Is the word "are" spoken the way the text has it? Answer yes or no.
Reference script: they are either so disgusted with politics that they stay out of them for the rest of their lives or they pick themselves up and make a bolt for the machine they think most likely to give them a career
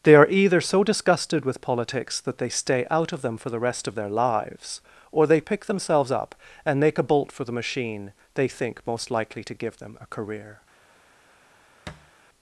yes